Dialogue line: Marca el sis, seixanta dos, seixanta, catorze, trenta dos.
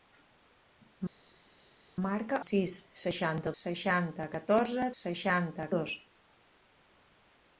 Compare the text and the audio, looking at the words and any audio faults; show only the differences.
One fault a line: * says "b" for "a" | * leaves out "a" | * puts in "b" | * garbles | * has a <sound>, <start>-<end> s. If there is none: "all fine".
* leaves out "el"
* leaves out "dos"
* says "seixanta" for "trenta"